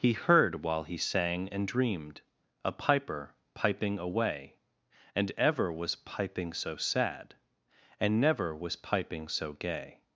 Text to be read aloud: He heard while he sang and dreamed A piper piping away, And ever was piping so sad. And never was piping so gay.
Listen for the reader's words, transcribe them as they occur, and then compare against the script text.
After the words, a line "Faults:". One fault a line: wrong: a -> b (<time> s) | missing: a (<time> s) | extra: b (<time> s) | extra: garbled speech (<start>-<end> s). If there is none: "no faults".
He heard while he sang and dreamed A piper piping away, And ever was piping so sad. And never was piping so gay.
Faults:
no faults